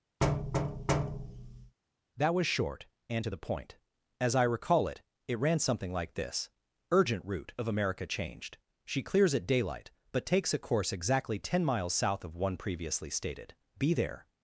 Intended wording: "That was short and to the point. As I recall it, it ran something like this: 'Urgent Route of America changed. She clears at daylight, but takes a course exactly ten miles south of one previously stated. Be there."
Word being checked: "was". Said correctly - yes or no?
yes